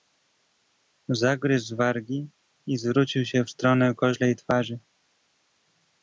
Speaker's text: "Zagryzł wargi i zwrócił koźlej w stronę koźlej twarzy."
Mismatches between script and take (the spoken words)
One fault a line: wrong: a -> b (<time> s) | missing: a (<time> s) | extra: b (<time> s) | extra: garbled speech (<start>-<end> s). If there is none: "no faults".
wrong: koźlej -> się (3.2 s)